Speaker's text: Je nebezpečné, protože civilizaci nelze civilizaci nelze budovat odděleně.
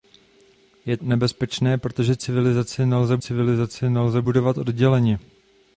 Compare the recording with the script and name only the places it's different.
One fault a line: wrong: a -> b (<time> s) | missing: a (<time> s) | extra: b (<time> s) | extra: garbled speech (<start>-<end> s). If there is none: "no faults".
no faults